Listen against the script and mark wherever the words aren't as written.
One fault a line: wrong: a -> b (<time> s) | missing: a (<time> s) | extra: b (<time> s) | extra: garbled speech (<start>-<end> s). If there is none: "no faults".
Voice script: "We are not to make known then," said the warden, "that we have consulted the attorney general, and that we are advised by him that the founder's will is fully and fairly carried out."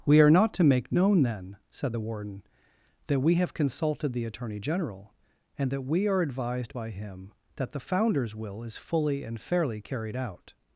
no faults